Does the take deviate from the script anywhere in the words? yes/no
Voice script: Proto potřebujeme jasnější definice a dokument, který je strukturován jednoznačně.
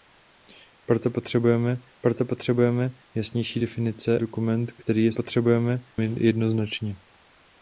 yes